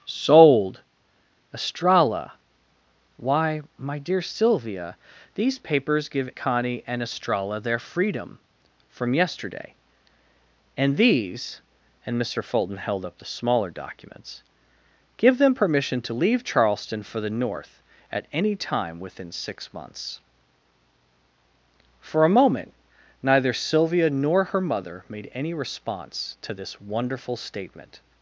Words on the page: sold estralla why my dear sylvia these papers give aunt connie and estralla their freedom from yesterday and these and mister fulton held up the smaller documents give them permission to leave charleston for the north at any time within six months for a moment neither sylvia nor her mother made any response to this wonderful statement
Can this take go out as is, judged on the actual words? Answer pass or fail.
fail